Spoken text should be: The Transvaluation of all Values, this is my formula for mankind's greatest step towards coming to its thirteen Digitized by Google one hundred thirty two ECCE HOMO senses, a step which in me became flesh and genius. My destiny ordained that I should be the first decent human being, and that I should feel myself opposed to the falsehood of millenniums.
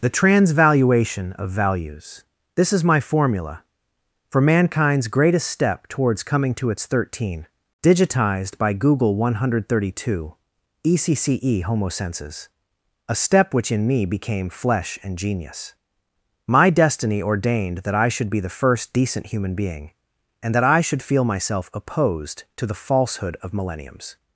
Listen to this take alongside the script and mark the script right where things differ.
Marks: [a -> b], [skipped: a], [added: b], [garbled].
The Transvaluation of [skipped: all] Values, this is my formula for mankind's greatest step towards coming to its thirteen Digitized by Google one hundred thirty two ECCE HOMO senses, a step which in me became flesh and genius. My destiny ordained that I should be the first decent human being, and that I should feel myself opposed to the falsehood of millenniums.